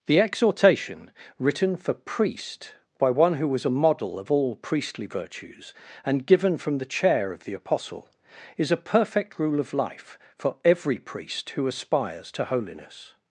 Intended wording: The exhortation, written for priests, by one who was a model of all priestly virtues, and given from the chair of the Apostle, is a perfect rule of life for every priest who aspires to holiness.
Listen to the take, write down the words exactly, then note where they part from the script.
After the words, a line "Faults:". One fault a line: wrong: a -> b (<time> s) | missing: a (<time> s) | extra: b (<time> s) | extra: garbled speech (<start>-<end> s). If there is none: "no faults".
The exhortation, written for priest, by one who was a model of all priestly virtues, and given from the chair of the Apostle, is a perfect rule of life for every priest who aspires to holiness.
Faults:
wrong: priests -> priest (1.9 s)